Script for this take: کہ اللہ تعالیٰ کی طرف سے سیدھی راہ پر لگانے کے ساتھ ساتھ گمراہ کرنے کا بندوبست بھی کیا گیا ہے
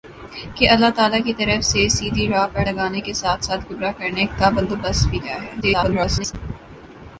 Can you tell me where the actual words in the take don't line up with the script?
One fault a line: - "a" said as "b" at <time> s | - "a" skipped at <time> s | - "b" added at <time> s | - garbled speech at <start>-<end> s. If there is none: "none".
- "کیا" skipped at 5.2 s
- garbled speech at 5.6-6.3 s